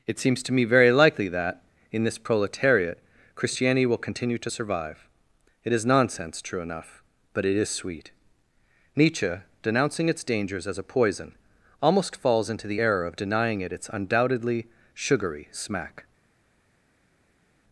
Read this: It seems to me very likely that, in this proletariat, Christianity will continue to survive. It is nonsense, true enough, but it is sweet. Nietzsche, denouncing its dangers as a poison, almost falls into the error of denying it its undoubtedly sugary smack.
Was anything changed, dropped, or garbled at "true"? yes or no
no